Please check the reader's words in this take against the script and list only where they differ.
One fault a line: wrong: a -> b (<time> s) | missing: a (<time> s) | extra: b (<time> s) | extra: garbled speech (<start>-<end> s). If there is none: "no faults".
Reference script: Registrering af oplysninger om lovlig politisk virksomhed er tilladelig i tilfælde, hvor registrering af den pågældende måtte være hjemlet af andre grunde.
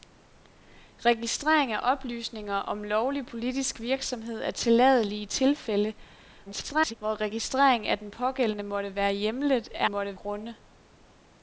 extra: garbled speech (6.5-6.9 s)
wrong: andre -> måtte (9.8 s)